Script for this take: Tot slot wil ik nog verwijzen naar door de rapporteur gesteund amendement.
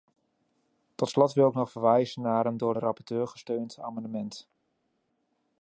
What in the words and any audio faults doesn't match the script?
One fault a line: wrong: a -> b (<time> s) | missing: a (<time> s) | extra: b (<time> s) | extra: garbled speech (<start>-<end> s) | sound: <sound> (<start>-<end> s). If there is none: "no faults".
extra: een (2.4 s)